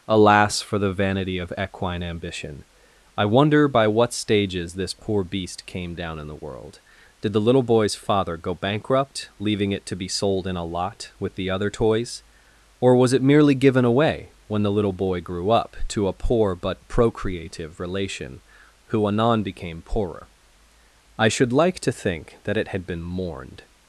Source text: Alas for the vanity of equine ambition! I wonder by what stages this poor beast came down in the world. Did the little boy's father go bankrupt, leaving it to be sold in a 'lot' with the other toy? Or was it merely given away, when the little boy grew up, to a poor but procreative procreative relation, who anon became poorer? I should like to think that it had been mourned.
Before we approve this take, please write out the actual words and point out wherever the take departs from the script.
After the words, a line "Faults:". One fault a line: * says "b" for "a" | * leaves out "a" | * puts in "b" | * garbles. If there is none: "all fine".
Alas for the vanity of equine ambition! I wonder by what stages this poor beast came down in the world. Did the little boy's father go bankrupt, leaving it to be sold in a 'lot' with the other toys? Or was it merely given away, when the little boy grew up, to a poor but procreative relation, who anon became poorer? I should like to think that it had been mourned.
Faults:
* says "toys" for "toy"
* leaves out "procreative"